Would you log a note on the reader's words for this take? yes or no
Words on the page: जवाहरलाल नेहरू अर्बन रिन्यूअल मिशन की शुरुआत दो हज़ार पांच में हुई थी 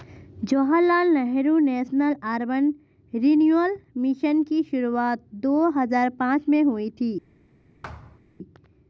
yes